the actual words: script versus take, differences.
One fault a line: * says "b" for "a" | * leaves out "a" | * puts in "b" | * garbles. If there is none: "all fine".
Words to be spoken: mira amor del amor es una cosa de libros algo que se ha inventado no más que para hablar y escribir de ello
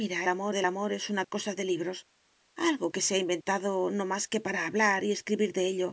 all fine